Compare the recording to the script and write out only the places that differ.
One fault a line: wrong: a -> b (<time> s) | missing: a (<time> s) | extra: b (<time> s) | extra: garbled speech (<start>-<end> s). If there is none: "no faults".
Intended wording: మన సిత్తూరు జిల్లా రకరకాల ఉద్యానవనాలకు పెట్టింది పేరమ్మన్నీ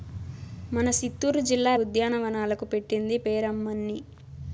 missing: రకరకాల (1.7 s)